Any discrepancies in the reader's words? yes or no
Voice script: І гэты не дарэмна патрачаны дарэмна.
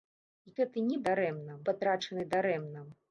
no